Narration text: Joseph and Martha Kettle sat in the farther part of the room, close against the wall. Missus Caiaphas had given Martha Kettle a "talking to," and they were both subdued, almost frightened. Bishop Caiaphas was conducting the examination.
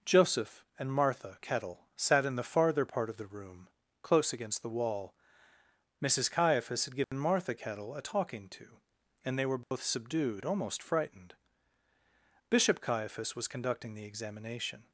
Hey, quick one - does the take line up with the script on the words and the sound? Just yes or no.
no